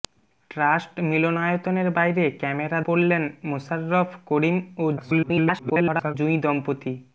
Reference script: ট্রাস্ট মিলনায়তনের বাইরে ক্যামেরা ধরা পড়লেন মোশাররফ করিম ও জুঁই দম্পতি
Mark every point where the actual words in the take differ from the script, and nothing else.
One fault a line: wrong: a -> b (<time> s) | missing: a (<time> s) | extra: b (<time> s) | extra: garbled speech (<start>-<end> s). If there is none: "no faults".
missing: ধরা (2.8 s)
extra: garbled speech (5.0-6.2 s)